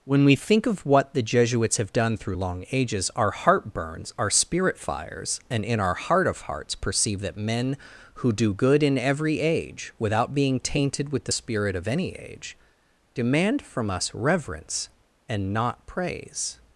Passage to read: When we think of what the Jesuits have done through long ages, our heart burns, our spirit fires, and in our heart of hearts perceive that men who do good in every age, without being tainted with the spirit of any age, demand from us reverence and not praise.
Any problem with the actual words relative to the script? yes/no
no